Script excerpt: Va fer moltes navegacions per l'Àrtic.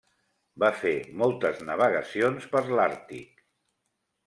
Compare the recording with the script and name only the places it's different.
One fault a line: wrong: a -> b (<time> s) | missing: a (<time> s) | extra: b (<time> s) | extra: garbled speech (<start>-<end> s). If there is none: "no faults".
no faults